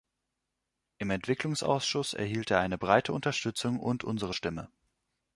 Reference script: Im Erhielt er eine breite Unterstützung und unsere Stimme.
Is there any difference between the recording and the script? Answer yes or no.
yes